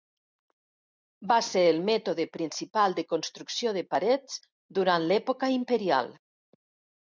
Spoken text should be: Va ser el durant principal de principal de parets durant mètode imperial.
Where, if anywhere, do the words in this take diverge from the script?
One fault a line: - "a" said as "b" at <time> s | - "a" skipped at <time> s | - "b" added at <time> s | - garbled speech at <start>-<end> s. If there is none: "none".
- "durant" said as "mètode" at 1.9 s
- "principal" said as "construcció" at 3.1 s
- "mètode" said as "l'època" at 5.1 s